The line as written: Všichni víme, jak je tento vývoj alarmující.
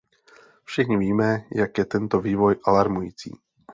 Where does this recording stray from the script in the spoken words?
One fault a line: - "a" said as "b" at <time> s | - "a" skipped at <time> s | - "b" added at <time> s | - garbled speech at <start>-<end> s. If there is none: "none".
none